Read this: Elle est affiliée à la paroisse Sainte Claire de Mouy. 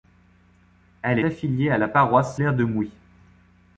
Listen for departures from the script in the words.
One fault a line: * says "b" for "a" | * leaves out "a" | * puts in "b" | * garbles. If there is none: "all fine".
* leaves out "est"
* leaves out "Sainte"